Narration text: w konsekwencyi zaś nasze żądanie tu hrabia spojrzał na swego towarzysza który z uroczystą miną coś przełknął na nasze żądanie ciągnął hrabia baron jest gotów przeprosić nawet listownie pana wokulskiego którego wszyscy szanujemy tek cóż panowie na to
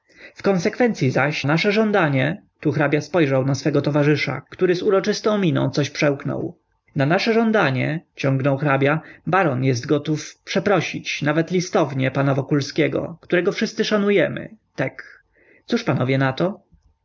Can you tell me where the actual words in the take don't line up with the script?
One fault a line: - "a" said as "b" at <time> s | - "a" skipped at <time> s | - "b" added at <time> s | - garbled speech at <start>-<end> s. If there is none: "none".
none